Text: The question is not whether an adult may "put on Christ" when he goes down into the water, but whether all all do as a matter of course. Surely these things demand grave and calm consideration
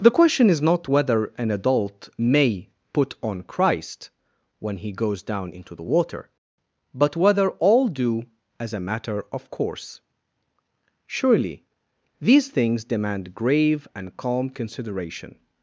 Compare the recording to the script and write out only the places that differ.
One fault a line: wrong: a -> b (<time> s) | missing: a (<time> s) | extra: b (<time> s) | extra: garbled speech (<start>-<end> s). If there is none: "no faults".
missing: all (7.9 s)